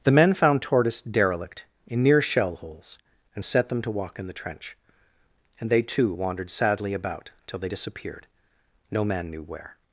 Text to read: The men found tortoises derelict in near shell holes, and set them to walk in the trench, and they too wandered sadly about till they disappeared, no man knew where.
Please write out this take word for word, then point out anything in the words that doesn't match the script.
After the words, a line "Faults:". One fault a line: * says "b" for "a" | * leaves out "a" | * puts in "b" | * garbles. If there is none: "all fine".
The men found tortoise derelict in near shell holes, and set them to walk in the trench, and they too wandered sadly about till they disappeared, no man knew where.
Faults:
* says "tortoise" for "tortoises"